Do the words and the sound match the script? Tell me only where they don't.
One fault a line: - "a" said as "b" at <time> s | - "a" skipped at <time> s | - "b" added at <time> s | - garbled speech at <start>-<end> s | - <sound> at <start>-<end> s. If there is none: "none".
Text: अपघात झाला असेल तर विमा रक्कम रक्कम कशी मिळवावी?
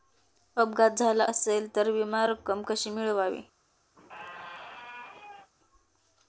- "रक्कम" skipped at 2.6 s
- squeak at 4.0-5.5 s